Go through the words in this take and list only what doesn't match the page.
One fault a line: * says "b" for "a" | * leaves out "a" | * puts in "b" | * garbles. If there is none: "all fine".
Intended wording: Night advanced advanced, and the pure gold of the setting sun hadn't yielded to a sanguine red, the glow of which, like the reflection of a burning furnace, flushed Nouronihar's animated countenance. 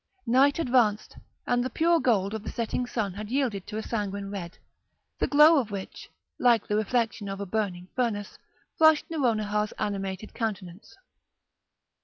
* leaves out "advanced"
* says "had" for "hadn't"